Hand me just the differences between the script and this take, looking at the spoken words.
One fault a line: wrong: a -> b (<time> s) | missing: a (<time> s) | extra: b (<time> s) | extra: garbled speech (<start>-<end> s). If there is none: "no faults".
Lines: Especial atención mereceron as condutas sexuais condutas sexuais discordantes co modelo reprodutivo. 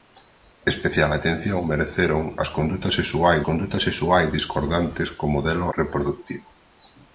no faults